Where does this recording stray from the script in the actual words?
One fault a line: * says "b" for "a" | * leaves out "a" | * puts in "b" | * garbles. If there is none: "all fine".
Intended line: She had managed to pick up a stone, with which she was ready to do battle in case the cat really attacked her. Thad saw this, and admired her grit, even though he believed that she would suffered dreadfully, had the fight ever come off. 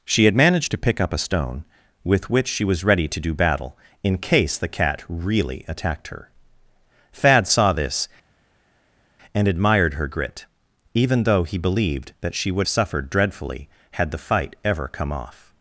all fine